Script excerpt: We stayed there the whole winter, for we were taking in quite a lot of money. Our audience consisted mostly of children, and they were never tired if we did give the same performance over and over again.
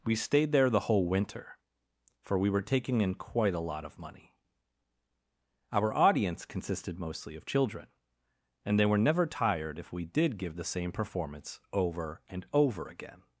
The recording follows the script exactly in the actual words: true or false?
true